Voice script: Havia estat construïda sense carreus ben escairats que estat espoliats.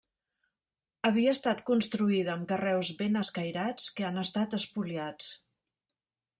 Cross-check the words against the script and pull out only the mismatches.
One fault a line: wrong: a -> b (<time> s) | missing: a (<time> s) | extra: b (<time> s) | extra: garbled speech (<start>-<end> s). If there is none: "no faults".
wrong: sense -> amb (2.4 s)
extra: han (4.1 s)